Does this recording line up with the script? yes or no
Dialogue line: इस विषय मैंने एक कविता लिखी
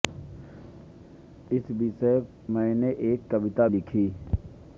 yes